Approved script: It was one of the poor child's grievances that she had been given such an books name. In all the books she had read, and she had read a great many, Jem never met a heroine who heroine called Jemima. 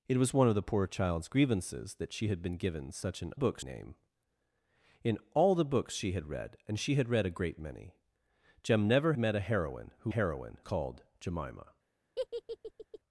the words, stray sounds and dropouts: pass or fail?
fail